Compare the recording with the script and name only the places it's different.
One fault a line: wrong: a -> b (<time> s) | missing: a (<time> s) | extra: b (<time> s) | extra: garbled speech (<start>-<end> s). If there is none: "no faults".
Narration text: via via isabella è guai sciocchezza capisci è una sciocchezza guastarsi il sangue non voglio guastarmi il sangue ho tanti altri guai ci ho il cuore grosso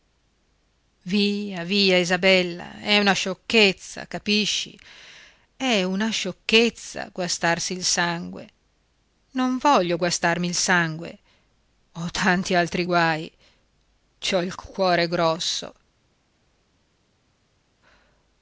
wrong: guai -> una (3.0 s)